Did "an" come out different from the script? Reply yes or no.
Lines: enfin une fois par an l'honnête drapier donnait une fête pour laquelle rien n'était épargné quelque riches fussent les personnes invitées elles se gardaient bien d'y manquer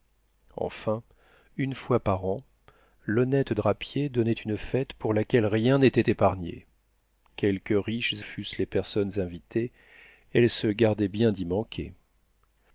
no